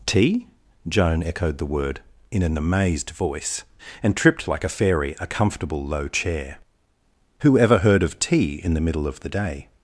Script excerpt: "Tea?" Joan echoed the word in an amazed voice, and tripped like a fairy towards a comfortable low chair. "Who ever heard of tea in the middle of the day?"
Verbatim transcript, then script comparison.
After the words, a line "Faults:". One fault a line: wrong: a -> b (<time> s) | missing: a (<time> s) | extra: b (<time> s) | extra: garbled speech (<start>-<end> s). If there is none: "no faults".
"Tea?" Joan echoed the word in an amazed voice, and tripped like a fairy a comfortable low chair. "Who ever heard of tea in the middle of the day?"
Faults:
missing: towards (5.2 s)